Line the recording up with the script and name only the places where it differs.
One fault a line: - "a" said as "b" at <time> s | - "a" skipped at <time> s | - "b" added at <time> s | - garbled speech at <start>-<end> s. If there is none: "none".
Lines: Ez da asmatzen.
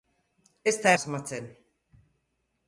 none